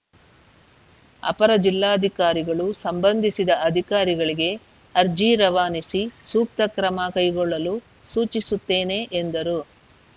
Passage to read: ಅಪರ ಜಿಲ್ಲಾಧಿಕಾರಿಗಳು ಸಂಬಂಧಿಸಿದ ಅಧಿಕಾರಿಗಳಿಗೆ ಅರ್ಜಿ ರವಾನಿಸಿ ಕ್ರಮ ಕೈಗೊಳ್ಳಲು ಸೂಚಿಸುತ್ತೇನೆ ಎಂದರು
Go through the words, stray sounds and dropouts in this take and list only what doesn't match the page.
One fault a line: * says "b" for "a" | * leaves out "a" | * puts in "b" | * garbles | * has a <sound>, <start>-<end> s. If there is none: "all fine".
* puts in "ಸೂಕ್ತ"